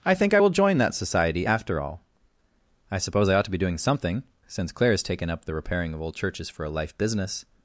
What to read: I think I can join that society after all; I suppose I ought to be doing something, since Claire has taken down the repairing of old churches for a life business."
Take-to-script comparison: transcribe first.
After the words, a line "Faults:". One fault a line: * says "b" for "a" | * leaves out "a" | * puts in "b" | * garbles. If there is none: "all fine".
I think I will join that society after all; I suppose I ought to be doing something, since Claire has taken up the repairing of old churches for a life business."
Faults:
* says "will" for "can"
* says "up" for "down"